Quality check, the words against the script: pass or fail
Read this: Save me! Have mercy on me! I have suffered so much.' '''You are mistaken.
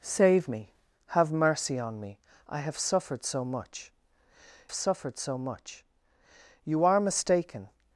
fail